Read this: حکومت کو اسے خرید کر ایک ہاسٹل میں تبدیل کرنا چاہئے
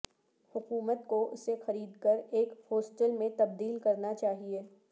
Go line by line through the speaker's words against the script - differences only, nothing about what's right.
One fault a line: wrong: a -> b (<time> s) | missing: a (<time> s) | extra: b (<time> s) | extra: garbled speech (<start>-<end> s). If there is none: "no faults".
no faults